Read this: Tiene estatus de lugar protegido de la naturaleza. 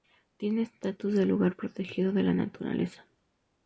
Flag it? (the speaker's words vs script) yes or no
no